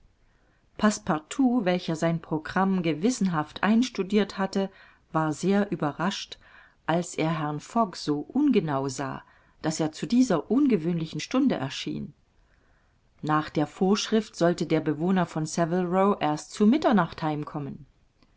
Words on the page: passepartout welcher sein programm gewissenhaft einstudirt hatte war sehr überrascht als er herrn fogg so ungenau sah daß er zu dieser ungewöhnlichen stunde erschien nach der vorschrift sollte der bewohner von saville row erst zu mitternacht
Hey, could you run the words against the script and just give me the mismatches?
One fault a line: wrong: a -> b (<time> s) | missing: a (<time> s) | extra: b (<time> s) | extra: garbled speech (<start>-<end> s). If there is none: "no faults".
no faults